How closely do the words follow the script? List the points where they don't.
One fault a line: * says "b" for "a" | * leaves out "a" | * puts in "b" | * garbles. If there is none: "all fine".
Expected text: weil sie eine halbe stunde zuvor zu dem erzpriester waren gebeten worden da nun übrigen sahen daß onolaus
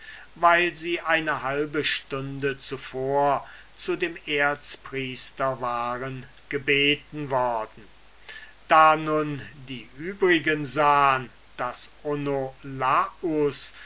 * puts in "die"